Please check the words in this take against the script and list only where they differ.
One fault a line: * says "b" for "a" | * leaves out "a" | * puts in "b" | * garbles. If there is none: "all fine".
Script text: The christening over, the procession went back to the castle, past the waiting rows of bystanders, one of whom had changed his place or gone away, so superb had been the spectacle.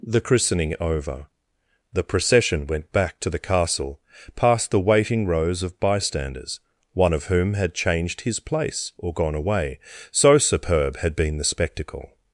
all fine